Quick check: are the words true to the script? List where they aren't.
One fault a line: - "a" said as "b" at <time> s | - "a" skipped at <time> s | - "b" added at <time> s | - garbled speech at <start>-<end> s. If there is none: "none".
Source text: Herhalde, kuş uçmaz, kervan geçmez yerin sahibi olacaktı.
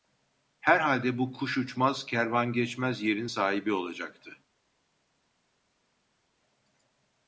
- "bu" added at 1.2 s